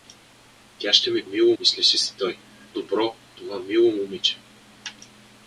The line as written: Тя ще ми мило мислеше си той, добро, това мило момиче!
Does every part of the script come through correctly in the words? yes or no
yes